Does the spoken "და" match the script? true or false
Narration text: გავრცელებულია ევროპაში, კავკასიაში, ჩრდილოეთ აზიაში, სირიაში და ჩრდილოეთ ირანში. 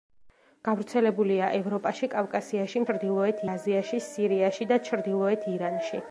true